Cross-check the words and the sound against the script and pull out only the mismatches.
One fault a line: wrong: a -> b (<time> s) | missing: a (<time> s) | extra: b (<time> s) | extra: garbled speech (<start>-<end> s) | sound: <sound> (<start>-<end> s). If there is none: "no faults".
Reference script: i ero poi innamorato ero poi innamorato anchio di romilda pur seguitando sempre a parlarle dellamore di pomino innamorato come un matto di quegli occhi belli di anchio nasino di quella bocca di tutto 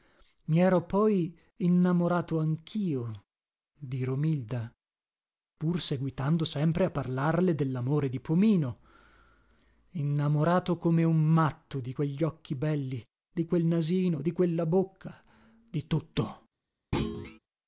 missing: ero poi innamorato (2.4 s)
wrong: anchio -> quel (13.4 s)
sound: thud (16.9-17.4 s)